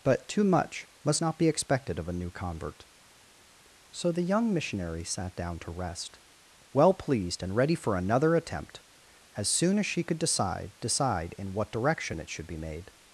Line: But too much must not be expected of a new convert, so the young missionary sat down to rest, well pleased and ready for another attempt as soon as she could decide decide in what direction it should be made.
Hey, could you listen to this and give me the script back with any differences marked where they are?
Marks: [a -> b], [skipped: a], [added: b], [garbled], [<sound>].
But too much must not be expected of a new convert, so the young missionary sat down to rest, well pleased and ready for another attempt as soon as she could decide decide in what direction it should be made.